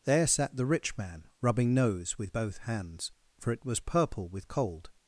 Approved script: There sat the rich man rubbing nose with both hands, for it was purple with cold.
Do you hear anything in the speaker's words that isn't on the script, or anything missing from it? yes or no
no